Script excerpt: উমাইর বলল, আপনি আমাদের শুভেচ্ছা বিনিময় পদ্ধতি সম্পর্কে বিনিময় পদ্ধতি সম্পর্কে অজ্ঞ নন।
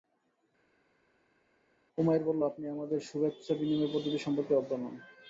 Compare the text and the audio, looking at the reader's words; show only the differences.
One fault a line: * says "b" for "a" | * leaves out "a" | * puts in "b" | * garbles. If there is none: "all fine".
* leaves out "বিনিময় পদ্ধতি সম্পর্কে"